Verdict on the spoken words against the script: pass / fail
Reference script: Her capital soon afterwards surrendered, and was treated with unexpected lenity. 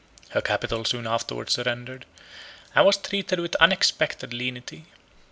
pass